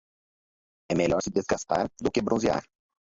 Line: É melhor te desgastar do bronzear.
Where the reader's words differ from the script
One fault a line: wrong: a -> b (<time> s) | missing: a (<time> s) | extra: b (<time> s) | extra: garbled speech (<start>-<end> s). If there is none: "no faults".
wrong: te -> se (1.2 s)
extra: que (2.1 s)